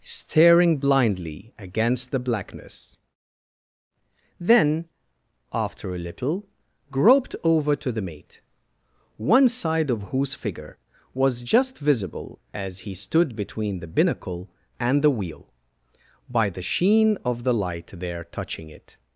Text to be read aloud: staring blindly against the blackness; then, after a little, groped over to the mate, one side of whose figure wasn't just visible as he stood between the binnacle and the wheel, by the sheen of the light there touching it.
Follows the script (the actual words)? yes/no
no